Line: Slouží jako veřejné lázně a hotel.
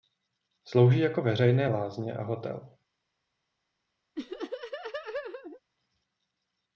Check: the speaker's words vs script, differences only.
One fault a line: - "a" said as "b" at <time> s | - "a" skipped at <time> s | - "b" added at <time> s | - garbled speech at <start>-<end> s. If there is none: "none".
none